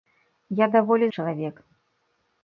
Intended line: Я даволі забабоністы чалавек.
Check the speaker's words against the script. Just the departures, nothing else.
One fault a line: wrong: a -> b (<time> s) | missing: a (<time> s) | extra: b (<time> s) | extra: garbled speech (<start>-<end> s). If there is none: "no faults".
missing: забабоністы (1.1 s)